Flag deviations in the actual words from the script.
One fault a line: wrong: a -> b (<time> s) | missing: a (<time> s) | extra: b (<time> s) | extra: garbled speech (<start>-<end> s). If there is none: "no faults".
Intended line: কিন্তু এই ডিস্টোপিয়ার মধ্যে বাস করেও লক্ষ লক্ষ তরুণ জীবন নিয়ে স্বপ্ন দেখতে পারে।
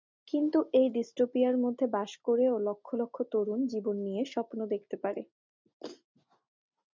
no faults